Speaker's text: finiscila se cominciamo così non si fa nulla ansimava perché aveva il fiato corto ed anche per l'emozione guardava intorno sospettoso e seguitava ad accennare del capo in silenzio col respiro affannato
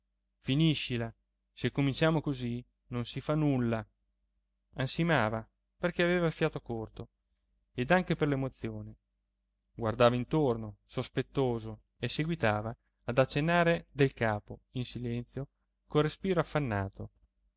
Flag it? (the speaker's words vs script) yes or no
no